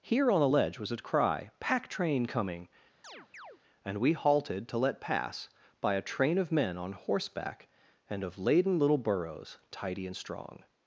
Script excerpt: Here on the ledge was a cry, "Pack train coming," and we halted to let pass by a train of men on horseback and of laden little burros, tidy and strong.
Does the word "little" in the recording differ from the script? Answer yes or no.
no